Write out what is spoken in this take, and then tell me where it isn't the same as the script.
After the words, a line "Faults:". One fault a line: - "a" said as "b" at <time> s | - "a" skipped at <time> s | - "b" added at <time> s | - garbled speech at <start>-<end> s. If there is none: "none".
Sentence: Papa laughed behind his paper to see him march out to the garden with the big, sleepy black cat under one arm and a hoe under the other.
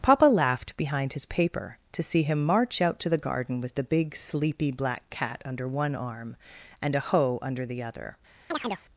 Papa laughed behind his paper to see him march out to the garden with the big, sleepy black cat under one arm and a hoe under the other.
Faults:
none